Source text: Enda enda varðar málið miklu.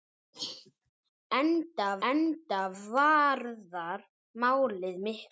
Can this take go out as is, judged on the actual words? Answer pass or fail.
pass